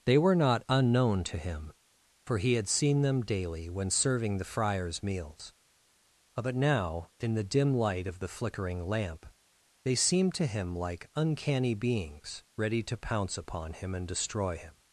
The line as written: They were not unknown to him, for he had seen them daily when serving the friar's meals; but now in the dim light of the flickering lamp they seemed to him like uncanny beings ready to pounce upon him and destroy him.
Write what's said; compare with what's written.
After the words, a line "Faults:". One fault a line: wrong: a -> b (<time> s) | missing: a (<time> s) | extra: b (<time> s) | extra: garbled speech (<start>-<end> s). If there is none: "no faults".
They were not unknown to him, for he had seen them daily when serving the friar's meals; but now in the dim light of the flickering lamp they seemed to him like uncanny beings ready to pounce upon him and destroy him.
Faults:
no faults